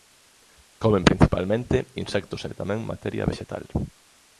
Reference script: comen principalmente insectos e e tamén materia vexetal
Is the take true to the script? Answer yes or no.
yes